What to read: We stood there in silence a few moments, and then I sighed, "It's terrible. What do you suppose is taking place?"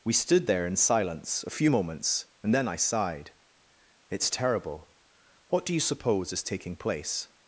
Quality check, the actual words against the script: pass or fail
pass